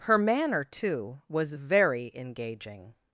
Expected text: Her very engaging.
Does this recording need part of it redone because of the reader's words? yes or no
yes